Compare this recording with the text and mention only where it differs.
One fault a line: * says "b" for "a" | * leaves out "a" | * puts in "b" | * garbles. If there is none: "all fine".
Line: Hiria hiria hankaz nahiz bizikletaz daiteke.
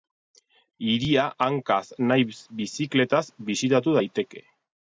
* leaves out "hiria"
* puts in "bisitatu"